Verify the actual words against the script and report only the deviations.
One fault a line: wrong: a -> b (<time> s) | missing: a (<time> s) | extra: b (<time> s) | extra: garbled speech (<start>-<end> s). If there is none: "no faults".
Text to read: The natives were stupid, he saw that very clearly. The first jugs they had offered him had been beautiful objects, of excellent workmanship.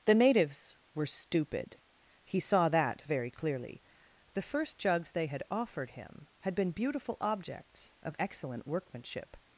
no faults